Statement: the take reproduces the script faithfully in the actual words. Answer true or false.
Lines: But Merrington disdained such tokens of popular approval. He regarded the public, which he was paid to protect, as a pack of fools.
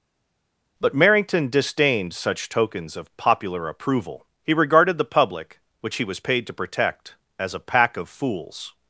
true